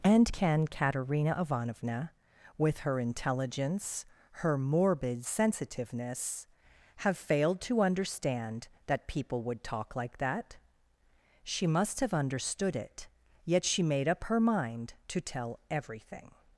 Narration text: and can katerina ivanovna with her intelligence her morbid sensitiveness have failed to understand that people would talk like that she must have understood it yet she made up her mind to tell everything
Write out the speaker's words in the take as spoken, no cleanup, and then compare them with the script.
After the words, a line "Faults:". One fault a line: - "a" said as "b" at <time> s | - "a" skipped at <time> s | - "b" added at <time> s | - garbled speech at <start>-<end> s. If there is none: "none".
and can katerina ivanovna with her intelligence her morbid sensitiveness have failed to understand that people would talk like that she must have understood it yet she made up her mind to tell everything
Faults:
none